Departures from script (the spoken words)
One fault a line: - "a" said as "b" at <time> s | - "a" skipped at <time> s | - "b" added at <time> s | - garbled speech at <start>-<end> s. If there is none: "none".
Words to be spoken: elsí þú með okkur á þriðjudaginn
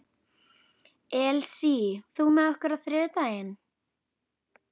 none